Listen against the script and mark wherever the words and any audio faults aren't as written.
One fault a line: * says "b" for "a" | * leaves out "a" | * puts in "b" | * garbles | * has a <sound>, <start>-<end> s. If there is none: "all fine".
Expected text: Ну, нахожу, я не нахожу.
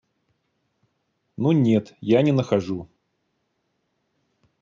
* says "нет" for "нахожу"